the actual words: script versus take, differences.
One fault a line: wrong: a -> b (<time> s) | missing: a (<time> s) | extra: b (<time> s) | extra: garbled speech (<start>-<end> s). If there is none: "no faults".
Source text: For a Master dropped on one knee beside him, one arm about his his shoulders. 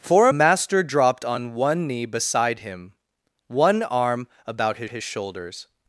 no faults